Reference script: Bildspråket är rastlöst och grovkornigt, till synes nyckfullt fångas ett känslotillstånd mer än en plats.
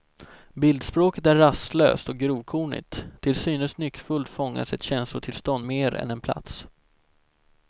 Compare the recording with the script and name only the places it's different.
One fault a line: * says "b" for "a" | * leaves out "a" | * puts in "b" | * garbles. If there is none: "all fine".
all fine